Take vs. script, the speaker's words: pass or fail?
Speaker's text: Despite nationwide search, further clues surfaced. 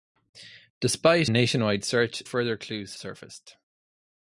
pass